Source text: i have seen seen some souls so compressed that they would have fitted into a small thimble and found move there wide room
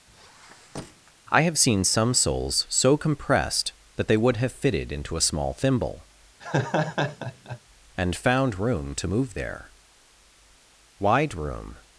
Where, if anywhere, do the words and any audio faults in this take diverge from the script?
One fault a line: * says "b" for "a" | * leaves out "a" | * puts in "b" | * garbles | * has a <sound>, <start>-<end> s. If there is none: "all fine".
* has a squeak, 0.1-1.1 s
* leaves out "seen"
* has a laugh, 6.4-7.6 s
* puts in "room to"